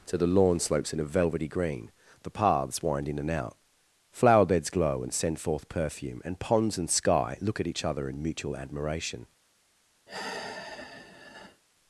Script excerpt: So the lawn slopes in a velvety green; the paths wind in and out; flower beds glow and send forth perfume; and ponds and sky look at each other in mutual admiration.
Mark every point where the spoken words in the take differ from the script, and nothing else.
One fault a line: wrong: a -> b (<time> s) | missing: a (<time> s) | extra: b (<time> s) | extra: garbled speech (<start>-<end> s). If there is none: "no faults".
wrong: So -> To (0.1 s)